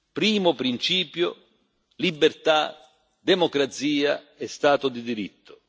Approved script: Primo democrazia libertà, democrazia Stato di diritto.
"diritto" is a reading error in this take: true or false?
false